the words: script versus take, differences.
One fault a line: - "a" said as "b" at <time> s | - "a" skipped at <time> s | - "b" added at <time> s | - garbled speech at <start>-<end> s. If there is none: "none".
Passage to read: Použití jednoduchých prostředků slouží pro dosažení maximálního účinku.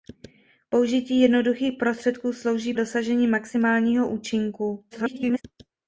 - "pro" skipped at 2.7 s
- garbled speech at 4.9-5.4 s